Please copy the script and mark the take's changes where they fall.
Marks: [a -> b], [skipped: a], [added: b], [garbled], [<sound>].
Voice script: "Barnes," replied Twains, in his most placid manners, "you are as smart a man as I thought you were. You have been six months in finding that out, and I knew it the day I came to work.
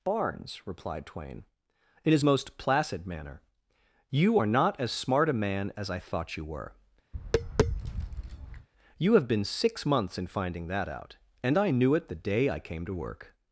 "Barnes," replied [Twains, -> Twain] in his most placid [manners, -> manner] "you are [added: not] as smart a man as I thought you were. [tap] You have been six months in finding that out, and I knew it the day I came to work.